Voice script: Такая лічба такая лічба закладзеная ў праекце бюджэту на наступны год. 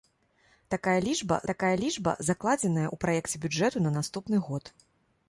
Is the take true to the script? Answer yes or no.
yes